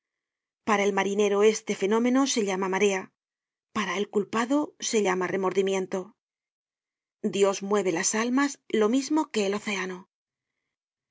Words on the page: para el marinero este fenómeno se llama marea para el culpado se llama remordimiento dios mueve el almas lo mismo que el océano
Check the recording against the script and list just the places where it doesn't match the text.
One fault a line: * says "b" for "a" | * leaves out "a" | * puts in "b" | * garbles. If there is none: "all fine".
* says "las" for "el"